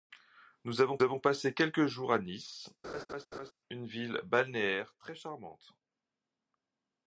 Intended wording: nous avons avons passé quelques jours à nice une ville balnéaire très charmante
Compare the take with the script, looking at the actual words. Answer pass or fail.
pass